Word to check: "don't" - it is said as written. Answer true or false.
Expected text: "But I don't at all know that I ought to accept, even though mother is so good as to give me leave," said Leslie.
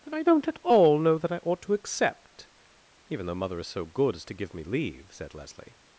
true